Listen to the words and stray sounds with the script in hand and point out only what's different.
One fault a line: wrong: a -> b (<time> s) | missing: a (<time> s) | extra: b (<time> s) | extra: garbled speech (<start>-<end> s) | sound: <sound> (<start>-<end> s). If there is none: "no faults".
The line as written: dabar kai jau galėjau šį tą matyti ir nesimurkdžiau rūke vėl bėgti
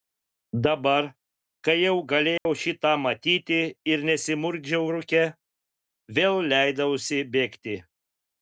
sound: dropout (2.4-2.5 s)
extra: leidausi (6.6 s)